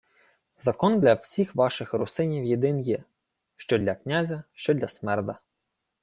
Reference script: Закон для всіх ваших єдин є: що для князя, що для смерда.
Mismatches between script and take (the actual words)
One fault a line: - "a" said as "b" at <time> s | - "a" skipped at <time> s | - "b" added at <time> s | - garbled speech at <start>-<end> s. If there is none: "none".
- "русинів" added at 1.9 s